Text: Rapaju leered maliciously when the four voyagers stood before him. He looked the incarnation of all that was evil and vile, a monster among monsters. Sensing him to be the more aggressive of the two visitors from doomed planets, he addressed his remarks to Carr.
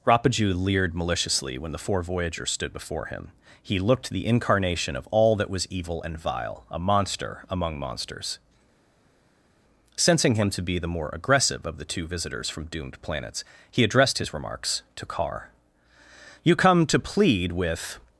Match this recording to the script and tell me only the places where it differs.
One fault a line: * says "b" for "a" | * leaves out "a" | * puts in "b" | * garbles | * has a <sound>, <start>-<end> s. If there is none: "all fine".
* puts in "You come to plead with"